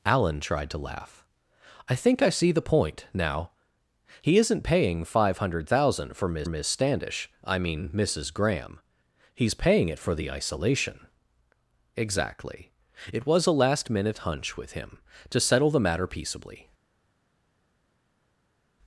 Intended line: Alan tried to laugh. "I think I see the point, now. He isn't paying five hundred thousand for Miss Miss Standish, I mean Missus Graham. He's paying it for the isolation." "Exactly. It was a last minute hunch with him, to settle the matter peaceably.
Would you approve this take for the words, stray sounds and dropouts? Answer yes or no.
yes